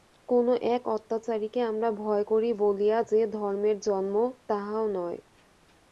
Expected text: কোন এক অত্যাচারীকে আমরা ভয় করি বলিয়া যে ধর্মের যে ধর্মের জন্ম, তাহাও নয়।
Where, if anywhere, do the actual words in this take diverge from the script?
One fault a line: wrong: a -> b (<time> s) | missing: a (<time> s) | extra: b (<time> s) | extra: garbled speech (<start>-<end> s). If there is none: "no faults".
missing: যে ধর্মের (3.8 s)